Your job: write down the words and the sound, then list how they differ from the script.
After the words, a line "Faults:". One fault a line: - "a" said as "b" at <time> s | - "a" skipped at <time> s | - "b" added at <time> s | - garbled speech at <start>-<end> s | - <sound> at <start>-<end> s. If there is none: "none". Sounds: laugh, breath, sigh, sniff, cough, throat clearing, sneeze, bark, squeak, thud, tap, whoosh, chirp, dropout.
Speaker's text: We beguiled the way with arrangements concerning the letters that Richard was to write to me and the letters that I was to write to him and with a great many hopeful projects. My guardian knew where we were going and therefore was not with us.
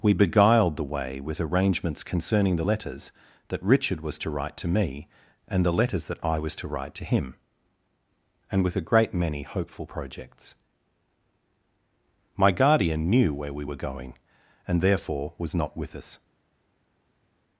We beguiled the way with arrangements concerning the letters that Richard was to write to me and the letters that I was to write to him and with a great many hopeful projects. My guardian knew where we were going and therefore was not with us.
Faults:
none